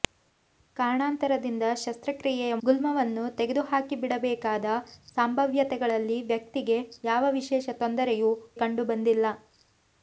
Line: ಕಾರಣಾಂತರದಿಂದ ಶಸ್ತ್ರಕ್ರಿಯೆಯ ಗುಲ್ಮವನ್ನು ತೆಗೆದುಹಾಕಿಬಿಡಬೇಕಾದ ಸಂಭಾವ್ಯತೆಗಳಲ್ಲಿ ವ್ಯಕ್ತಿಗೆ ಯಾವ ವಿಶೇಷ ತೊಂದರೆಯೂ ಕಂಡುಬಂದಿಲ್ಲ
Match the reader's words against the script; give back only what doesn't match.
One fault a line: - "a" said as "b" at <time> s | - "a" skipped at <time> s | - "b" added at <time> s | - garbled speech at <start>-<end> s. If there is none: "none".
none